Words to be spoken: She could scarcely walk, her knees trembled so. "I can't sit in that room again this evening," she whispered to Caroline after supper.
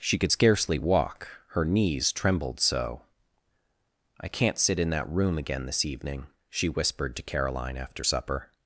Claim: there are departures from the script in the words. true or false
false